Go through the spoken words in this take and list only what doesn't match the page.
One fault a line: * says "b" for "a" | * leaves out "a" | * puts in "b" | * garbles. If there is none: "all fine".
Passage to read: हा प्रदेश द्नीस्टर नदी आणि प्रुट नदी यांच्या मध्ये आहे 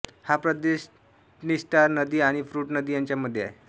all fine